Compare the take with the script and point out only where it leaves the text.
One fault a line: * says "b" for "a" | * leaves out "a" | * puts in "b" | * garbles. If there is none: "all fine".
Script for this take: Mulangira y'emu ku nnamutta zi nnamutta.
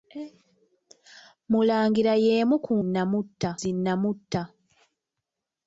all fine